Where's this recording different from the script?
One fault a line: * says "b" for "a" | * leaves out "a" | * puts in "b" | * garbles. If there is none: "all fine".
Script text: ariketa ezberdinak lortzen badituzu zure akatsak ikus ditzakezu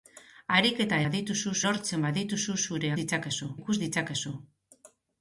* says "badituzu" for "ezberdinak"
* says "ditzakezu" for "akatsak"